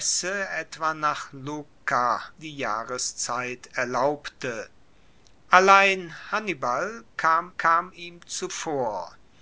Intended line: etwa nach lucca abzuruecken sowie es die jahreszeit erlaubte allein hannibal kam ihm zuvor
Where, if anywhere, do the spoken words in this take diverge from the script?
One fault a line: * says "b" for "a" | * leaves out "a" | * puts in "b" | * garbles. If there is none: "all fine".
* leaves out "abzuruecken sowie es"
* puts in "kam"